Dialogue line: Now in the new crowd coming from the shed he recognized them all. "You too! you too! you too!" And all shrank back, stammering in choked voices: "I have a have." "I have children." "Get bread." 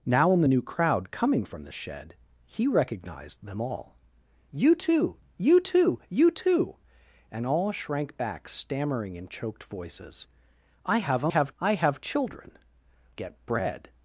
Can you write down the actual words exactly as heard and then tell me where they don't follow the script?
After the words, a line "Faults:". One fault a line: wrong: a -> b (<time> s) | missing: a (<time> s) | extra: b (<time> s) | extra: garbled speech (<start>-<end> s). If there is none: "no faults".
Now in the new crowd coming from the shed he recognized them all. "You too! you too! you too!" And all shrank back, stammering in choked voices: "I have a have." "I have children." "Get bread."
Faults:
no faults